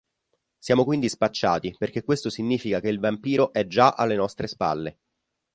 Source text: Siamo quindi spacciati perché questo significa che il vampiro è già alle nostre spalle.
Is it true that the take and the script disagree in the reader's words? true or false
false